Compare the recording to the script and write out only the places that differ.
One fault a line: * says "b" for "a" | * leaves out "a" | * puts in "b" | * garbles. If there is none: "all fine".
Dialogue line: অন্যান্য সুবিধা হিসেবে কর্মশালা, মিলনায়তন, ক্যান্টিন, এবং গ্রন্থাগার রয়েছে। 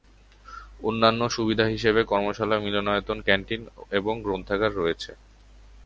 all fine